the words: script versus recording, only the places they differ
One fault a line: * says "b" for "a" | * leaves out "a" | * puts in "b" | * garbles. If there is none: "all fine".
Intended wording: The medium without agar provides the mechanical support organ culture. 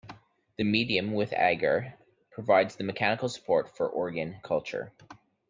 * says "with" for "without"
* puts in "for"